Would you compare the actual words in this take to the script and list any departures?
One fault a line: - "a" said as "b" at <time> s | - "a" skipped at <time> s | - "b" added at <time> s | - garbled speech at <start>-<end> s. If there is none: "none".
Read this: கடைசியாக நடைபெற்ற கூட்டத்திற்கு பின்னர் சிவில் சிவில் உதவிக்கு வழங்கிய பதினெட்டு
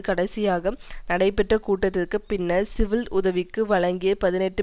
- "சிவில்" skipped at 3.1 s